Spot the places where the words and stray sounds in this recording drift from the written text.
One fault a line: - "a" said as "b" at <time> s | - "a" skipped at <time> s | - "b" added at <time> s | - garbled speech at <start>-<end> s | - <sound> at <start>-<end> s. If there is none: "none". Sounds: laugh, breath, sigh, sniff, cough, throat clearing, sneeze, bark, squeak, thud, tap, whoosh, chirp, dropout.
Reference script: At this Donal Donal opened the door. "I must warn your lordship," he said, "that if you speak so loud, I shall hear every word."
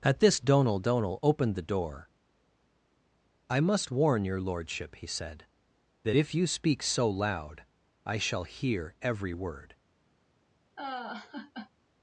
- laugh at 10.8-11.7 s